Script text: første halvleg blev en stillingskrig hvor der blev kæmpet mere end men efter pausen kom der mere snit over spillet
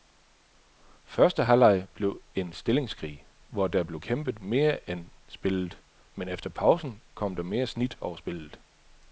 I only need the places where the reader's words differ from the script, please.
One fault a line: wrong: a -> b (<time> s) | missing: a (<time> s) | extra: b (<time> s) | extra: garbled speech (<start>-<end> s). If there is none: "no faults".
extra: spillet (5.3 s)